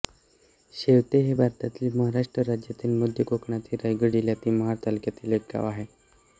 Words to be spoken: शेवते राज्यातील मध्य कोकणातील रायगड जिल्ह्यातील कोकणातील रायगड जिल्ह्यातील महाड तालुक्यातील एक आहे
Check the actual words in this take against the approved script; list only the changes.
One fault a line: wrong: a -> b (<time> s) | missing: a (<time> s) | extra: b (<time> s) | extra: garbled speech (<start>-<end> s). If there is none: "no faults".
wrong: राज्यातील मध्य कोकणातील रायगड जिल्ह्यातील -> हे भारतातील महाराष्ट्र राज्यातील मध्य (1.2 s)
extra: गाव (5.5 s)